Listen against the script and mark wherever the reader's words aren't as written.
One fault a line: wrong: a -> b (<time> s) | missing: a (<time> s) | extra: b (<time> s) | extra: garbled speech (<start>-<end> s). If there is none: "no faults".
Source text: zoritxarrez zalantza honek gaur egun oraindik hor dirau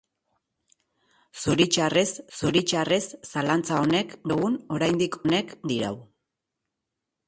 extra: zoritxarrez (2.4 s)
missing: gaur (4.2 s)
wrong: hor -> honek (5.3 s)